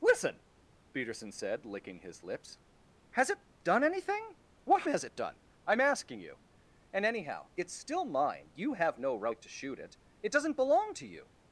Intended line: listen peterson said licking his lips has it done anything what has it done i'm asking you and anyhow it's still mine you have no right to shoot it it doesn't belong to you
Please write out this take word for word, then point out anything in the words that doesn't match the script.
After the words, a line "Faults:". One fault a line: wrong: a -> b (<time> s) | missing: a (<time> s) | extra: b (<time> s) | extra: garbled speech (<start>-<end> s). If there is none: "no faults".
listen peterson said licking his lips has it done anything what has it done i'm asking you and anyhow it's still mine you have no right to shoot it it doesn't belong to you
Faults:
no faults